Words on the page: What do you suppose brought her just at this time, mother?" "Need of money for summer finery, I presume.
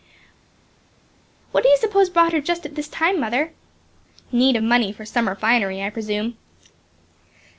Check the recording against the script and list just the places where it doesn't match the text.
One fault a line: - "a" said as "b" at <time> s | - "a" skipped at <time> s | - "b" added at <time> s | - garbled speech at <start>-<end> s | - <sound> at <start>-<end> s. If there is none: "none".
none